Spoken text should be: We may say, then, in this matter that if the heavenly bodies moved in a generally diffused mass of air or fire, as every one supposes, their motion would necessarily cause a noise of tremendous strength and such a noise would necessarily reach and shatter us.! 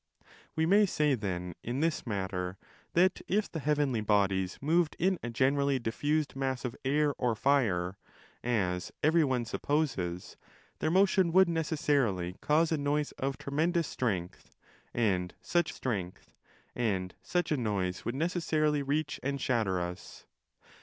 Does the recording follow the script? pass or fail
fail